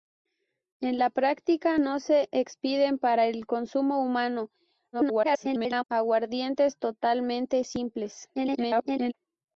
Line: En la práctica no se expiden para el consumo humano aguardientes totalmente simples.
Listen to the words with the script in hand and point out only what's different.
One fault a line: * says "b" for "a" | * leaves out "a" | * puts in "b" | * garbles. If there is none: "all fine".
* garbles
* garbles